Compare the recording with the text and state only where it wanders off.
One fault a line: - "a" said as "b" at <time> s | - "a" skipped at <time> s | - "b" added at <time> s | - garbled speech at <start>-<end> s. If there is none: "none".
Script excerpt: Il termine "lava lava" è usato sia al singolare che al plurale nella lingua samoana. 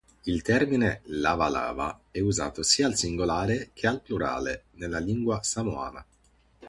none